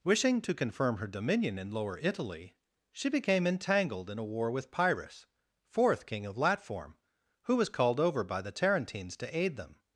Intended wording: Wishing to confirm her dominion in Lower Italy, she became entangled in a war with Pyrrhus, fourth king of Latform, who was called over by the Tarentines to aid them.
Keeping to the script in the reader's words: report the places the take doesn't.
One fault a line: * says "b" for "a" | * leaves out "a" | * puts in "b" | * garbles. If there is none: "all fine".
all fine